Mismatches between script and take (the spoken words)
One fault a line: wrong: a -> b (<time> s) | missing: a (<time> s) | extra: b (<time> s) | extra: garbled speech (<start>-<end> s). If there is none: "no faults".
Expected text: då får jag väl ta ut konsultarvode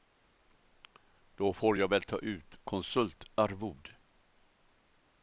no faults